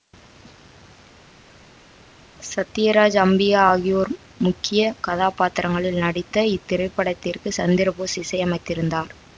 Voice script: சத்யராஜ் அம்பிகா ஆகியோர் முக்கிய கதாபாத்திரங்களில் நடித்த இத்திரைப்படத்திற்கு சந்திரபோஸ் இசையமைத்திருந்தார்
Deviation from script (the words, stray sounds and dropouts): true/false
false